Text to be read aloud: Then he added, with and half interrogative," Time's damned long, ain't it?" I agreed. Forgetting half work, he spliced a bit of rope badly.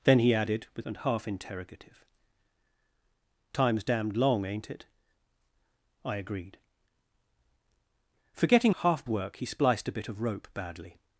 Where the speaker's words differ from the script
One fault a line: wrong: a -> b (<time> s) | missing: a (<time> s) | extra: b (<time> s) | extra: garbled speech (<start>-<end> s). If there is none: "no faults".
no faults